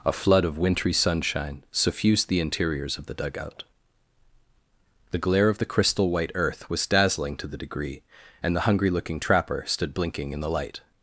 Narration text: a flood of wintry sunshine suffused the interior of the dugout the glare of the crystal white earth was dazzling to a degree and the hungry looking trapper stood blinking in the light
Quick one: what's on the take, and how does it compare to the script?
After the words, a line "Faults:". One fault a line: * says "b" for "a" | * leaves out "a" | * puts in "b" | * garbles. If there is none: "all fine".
a flood of wintry sunshine suffused the interiors of the dugout the glare of the crystal white earth was dazzling to the degree and the hungry looking trapper stood blinking in the light
Faults:
* says "interiors" for "interior"
* says "the" for "a"